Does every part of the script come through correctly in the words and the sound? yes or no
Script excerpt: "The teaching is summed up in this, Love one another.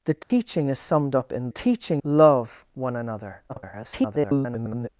no